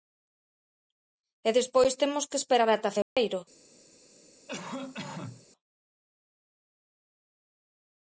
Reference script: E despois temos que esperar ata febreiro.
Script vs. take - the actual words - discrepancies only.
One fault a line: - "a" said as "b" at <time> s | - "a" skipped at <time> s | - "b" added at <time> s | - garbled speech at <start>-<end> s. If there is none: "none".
none